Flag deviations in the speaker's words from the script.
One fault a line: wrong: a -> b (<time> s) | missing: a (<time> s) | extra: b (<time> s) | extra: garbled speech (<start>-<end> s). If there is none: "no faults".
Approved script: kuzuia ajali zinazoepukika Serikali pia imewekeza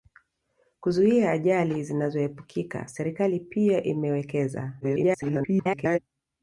extra: garbled speech (4.8-6.0 s)